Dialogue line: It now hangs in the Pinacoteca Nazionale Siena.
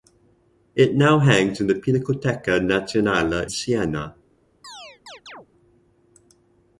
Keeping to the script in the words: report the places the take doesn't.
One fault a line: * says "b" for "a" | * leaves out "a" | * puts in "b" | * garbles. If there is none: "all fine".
all fine